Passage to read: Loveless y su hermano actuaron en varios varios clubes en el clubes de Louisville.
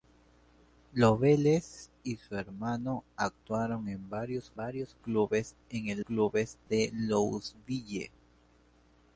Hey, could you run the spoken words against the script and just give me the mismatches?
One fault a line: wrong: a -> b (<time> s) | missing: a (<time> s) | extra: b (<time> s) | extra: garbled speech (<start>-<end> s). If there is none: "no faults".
no faults